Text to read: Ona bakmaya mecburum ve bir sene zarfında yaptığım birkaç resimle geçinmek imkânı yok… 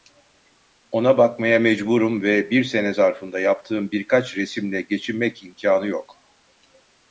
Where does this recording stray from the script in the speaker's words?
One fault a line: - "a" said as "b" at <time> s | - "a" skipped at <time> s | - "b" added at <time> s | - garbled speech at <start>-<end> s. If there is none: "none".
none